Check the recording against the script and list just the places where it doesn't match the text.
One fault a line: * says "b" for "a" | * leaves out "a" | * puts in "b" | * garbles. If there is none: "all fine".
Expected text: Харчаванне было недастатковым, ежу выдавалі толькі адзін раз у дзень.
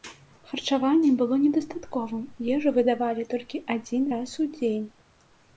all fine